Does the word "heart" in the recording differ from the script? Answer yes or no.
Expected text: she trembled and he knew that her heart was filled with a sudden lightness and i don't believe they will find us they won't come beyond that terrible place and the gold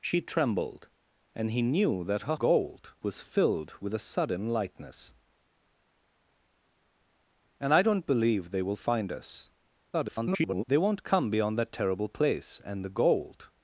yes